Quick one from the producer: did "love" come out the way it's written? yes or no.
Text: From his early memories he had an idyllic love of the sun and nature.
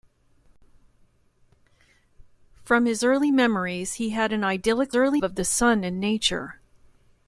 no